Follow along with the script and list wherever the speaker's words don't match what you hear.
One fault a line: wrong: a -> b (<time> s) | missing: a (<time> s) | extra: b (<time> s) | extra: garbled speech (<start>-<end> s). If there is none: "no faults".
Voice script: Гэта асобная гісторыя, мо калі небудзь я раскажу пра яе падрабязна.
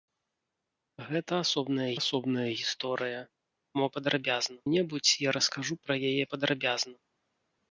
extra: асобная (2.0 s)
wrong: калі -> падрабязна (4.0 s)